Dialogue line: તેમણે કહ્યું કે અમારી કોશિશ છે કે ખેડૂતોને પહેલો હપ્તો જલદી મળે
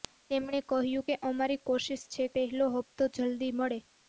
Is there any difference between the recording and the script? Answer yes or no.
yes